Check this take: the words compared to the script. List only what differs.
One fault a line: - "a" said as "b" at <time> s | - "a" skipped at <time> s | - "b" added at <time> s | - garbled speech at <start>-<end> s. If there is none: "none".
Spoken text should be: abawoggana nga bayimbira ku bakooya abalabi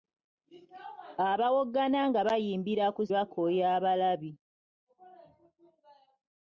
none